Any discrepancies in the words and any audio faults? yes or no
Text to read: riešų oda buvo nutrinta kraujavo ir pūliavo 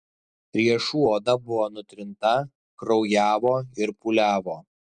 no